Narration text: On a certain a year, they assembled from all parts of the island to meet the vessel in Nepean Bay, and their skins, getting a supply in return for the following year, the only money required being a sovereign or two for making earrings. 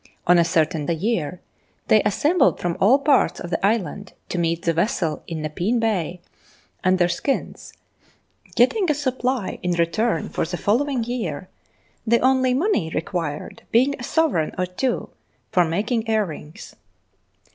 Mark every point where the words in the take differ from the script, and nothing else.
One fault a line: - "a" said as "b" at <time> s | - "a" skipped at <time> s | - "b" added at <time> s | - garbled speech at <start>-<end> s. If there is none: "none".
none